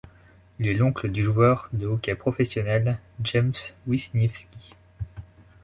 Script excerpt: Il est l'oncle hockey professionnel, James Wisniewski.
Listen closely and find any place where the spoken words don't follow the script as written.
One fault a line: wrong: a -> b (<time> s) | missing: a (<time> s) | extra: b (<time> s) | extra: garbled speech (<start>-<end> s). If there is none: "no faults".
extra: du joueur de (1.1 s)